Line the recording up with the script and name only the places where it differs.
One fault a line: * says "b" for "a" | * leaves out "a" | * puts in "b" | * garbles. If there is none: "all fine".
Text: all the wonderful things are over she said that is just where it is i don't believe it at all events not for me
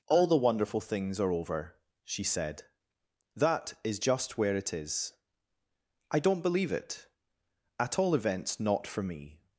all fine